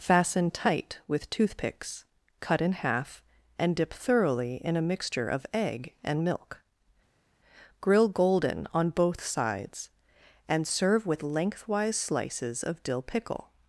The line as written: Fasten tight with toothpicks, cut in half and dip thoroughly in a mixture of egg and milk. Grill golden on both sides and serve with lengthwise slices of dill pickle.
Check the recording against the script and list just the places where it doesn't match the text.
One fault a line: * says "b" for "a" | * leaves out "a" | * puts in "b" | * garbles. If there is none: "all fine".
all fine